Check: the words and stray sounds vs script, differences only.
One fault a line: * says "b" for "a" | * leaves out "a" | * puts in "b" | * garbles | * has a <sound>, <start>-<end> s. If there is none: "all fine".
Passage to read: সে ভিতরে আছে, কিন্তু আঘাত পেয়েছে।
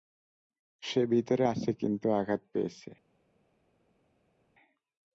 all fine